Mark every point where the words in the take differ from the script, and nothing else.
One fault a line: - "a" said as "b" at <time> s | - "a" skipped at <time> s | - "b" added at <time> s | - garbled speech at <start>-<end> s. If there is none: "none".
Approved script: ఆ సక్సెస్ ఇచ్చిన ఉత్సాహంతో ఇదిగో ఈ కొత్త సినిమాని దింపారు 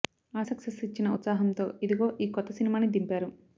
none